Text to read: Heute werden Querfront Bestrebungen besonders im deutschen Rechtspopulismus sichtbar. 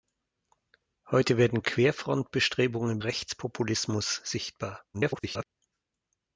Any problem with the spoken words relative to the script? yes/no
yes